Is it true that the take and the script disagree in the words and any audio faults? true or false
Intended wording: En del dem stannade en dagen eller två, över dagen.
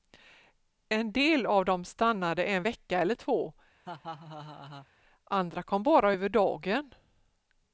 true